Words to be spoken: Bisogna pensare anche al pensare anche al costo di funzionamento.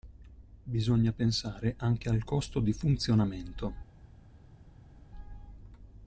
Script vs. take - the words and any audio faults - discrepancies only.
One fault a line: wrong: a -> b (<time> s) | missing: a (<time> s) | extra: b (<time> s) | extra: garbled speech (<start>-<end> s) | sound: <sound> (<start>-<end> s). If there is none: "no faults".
missing: pensare anche al (2.2 s)